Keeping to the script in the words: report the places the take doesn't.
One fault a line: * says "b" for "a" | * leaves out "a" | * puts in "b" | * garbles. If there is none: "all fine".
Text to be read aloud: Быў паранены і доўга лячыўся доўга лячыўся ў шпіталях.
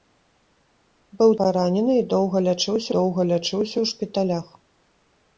all fine